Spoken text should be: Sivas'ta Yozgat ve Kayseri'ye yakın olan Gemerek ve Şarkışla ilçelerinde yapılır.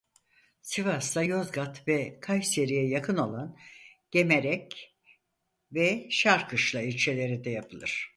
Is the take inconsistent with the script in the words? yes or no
no